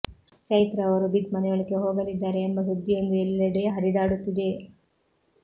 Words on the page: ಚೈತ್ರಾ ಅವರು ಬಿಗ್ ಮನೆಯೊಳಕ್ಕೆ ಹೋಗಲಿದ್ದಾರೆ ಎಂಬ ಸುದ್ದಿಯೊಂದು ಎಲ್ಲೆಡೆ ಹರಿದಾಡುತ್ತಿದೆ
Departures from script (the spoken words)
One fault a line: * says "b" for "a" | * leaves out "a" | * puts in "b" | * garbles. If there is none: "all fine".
all fine